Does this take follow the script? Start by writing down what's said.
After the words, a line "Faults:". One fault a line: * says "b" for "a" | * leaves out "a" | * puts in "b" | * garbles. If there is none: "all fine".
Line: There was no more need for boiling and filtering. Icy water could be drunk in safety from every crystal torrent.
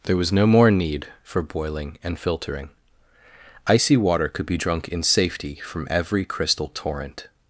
There was no more need for boiling and filtering. Icy water could be drunk in safety from every crystal torrent.
Faults:
all fine